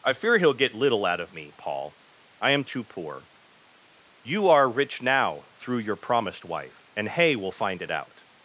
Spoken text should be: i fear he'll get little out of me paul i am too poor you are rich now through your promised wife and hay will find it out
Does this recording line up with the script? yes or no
yes